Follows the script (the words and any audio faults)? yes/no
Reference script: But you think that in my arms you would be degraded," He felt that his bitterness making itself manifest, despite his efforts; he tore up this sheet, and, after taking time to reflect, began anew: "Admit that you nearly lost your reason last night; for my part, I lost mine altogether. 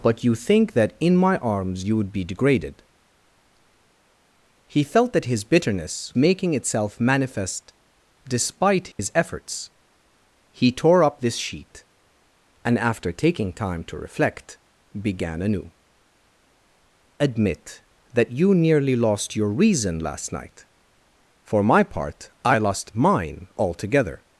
no